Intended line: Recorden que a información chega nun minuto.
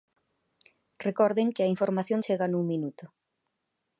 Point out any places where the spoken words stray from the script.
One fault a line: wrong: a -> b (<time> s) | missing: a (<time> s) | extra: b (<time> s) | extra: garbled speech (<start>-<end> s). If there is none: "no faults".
no faults